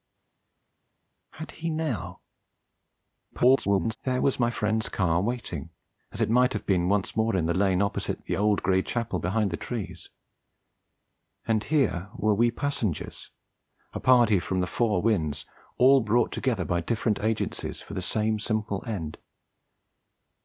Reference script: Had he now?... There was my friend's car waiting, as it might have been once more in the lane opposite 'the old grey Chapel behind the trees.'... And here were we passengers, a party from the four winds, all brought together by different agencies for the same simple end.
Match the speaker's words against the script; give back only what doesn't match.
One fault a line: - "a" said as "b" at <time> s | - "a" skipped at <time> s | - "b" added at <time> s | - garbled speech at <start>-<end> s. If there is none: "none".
- garbled speech at 3.3-4.0 s